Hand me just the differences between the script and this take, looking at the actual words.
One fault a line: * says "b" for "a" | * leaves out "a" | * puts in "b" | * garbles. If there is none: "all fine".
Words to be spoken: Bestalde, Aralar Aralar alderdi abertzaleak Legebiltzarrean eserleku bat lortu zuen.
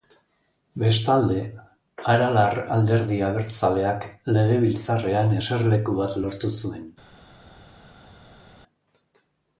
* leaves out "Aralar"